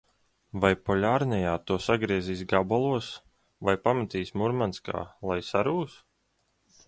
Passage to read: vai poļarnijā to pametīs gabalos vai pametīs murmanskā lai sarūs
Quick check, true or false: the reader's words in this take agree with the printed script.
false